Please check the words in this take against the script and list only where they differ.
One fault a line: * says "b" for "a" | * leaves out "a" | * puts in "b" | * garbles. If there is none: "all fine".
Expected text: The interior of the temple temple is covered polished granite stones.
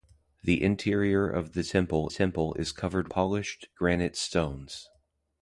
all fine